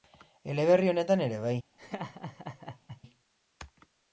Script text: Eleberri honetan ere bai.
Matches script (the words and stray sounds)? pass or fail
fail